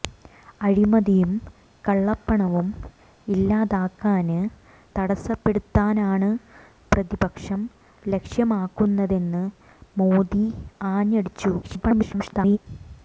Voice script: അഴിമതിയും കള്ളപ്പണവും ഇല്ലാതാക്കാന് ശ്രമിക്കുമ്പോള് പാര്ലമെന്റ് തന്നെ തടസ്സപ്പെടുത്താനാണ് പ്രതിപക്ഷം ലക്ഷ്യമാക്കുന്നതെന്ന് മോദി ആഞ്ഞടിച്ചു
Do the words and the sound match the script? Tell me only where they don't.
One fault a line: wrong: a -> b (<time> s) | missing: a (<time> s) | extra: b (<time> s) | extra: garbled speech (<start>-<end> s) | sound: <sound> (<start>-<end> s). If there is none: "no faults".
missing: ശ്രമിക്കുമ്പോള് പാര്ലമെന്റ് തന്നെ (4.4 s)
extra: garbled speech (11.6-12.6 s)